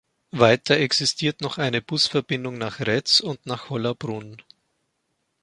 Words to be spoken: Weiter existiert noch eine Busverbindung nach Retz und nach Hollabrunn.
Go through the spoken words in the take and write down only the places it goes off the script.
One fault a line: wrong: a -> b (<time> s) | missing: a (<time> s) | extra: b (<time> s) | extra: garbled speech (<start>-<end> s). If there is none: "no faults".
no faults